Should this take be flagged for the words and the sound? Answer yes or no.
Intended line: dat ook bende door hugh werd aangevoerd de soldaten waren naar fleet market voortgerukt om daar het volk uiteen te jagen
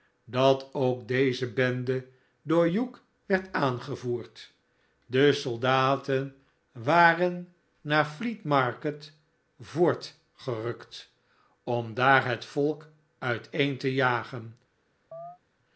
yes